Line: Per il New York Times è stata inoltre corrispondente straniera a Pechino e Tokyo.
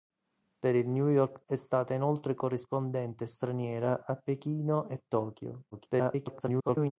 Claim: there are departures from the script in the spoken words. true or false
true